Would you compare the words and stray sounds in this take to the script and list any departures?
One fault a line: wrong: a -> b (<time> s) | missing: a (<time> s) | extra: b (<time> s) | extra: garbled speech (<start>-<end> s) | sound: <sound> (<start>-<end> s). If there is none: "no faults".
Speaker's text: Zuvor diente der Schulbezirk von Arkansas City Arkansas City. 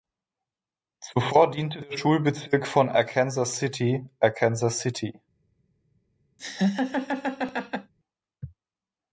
sound: laugh (6.4-7.9 s)